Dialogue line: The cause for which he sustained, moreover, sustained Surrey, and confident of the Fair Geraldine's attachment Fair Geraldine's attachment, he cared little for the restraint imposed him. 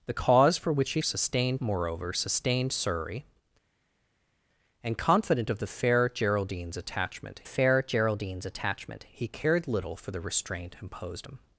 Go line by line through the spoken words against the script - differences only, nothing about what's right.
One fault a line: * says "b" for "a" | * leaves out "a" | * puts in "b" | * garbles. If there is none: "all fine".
all fine